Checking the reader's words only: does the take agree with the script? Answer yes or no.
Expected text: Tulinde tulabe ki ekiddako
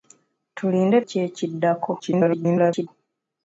no